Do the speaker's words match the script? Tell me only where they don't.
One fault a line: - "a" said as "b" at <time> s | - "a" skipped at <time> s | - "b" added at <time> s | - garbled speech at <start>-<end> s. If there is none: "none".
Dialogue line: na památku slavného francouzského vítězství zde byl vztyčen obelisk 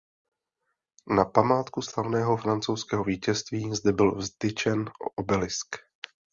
none